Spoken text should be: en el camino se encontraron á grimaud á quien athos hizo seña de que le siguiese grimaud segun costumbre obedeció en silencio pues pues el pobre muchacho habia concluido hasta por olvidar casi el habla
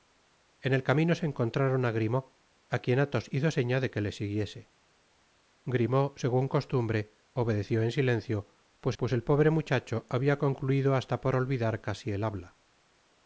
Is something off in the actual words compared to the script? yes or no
no